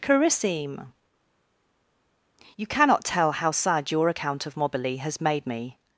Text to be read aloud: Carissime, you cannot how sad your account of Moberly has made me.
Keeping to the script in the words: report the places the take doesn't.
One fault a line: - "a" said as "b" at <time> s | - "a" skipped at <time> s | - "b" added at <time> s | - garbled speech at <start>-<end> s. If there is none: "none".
- "tell" added at 3.0 s